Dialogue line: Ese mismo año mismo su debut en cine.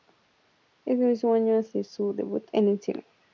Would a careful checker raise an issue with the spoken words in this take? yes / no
yes